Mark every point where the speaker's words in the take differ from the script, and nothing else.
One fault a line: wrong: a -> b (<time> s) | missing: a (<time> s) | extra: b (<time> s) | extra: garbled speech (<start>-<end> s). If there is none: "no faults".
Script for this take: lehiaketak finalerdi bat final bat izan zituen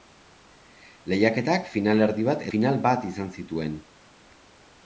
no faults